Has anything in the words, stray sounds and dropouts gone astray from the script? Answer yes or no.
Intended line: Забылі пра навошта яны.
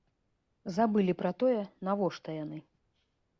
yes